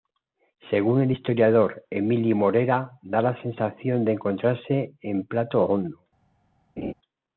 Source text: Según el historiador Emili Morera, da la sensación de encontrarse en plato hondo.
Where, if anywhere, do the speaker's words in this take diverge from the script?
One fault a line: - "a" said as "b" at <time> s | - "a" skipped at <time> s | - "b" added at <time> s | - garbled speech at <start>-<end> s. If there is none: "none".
none